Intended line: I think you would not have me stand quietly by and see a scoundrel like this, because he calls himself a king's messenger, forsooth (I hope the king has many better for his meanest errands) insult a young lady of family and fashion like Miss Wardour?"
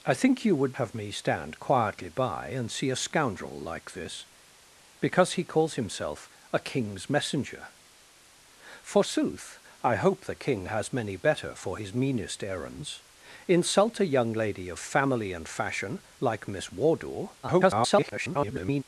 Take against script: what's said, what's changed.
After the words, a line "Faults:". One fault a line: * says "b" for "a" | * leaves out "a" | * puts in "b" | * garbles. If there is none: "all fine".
I think you would have me stand quietly by and see a scoundrel like this, because he calls himself a king's messenger, forsooth (I hope the king has many better for his meanest errands) insult a young lady of family and fashion like Miss Wardour?" [garbled]
Faults:
* leaves out "not"
* garbles